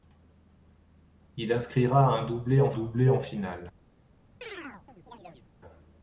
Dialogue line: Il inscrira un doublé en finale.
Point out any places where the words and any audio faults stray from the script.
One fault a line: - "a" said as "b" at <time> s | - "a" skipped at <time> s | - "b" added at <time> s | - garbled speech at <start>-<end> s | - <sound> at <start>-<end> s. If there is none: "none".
- "doublé en" added at 2.7 s
- chirp at 4.4-5.5 s